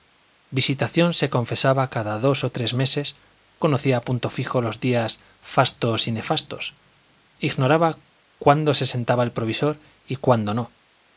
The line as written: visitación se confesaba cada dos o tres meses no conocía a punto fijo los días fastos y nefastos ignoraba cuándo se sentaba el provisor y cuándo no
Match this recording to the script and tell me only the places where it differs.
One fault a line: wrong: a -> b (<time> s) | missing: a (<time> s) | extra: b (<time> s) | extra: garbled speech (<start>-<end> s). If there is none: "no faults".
missing: no (3.1 s)